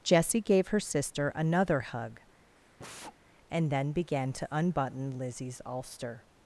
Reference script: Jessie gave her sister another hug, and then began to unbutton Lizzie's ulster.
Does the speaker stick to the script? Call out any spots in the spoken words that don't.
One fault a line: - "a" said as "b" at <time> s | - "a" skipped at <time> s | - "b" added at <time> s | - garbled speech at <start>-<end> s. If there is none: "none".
none